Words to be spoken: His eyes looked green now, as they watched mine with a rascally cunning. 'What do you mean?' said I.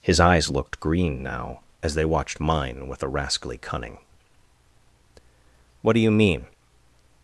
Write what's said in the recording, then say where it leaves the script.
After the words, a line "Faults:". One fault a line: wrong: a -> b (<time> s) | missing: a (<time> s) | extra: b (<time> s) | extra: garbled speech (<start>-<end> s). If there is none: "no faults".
His eyes looked green now, as they watched mine with a rascally cunning. 'What do you mean.
Faults:
missing: said I (6.5 s)